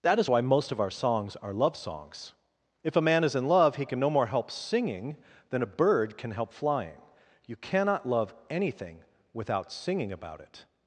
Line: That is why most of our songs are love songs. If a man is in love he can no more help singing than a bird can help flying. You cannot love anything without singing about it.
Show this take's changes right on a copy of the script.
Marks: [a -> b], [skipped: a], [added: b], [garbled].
That is why most of our songs are love songs. If a man is in love he can no more help singing than a bird can help flying. You cannot love anything without singing about it.